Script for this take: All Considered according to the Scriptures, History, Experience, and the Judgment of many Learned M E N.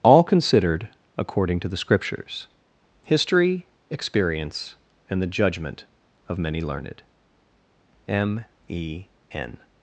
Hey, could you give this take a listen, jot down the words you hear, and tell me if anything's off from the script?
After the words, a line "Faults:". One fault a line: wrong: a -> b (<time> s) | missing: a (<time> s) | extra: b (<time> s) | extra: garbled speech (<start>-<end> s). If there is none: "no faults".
All Considered according to the Scriptures, History, Experience, and the Judgment of many Learned M E N.
Faults:
no faults